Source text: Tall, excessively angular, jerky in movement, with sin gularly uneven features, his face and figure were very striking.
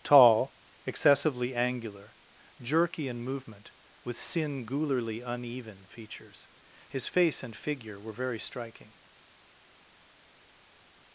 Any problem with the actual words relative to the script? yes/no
no